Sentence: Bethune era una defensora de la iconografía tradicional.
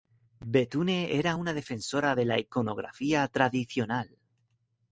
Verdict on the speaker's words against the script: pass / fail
pass